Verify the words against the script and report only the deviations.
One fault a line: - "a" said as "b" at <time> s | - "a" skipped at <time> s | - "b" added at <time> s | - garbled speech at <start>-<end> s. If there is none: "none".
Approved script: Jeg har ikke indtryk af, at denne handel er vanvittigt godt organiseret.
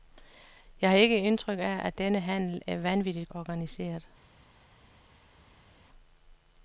- "godt" skipped at 3.3 s